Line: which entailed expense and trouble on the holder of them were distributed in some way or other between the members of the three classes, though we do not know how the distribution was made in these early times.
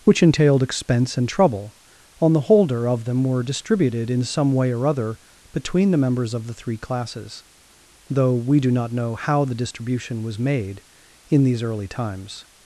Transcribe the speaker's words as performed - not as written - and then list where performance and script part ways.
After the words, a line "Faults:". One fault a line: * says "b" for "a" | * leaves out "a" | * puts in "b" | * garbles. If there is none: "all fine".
which entailed expense and trouble on the holder of them were distributed in some way or other between the members of the three classes, though we do not know how the distribution was made in these early times.
Faults:
all fine